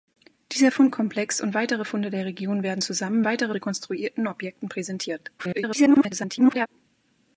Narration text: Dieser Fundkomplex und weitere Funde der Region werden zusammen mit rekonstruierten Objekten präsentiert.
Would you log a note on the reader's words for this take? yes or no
yes